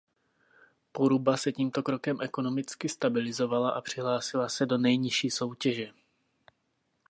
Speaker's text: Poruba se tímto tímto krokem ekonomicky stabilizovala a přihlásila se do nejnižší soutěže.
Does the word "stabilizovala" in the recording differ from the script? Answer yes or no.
no